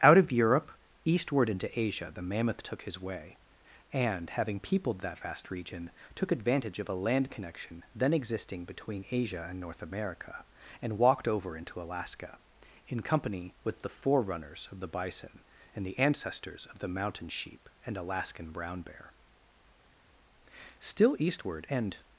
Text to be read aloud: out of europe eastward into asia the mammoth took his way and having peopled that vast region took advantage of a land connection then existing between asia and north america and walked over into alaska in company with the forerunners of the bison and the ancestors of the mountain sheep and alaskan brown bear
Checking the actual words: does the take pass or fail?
fail